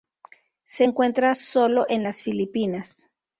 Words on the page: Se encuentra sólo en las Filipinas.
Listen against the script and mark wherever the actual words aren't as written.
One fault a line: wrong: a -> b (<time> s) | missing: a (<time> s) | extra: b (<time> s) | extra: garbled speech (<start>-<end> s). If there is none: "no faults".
no faults